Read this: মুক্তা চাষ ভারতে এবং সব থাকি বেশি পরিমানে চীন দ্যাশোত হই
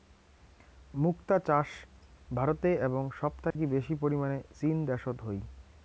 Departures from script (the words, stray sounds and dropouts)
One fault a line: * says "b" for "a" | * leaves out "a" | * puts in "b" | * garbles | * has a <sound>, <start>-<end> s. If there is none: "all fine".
* has a dropout, 3.5-3.6 s